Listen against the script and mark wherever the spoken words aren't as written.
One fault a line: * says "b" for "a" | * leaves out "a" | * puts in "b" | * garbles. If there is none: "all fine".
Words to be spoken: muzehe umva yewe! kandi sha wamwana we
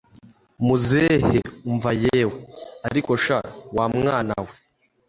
* says "ariko" for "kandi"